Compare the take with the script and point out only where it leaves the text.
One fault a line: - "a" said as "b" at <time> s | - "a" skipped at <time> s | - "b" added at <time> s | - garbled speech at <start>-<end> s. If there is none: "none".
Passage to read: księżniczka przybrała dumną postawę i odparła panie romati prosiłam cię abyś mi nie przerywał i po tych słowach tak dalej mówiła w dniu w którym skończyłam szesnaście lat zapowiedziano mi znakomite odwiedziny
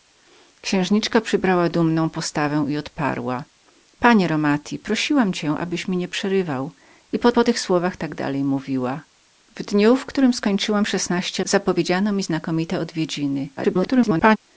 - "po" added at 7.3 s
- "lat" skipped at 11.4 s
- garbled speech at 13.6-14.4 s